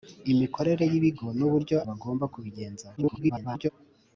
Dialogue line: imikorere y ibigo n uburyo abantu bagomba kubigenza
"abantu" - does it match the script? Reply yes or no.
no